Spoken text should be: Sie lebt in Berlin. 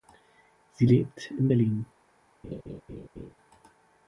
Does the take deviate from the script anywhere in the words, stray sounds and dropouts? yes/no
yes